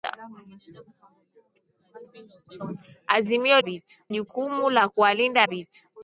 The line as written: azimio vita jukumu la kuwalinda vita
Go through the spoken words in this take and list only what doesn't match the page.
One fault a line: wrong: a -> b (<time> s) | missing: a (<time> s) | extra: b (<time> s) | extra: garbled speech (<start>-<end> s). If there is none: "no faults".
no faults